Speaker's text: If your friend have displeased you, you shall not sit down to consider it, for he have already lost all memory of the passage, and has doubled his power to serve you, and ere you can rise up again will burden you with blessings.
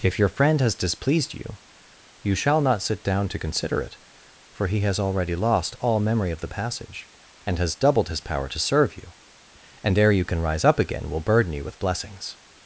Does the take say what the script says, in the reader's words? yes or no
no